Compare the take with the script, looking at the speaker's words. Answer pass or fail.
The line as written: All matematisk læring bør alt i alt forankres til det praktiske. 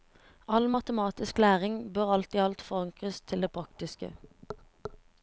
pass